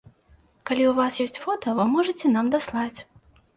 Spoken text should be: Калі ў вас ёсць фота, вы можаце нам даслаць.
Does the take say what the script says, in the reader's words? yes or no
yes